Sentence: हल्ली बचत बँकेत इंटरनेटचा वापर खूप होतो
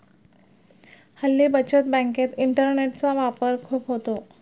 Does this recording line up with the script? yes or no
yes